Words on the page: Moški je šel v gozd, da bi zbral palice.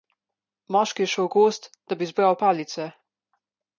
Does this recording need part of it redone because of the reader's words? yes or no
no